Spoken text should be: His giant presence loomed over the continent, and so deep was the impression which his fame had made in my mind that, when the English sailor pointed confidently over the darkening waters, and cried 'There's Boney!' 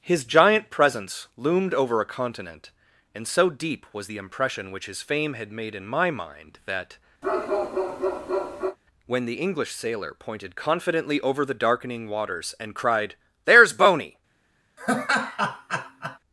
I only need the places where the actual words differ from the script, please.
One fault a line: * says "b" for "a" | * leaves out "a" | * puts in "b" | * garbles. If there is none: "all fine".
* says "a" for "the"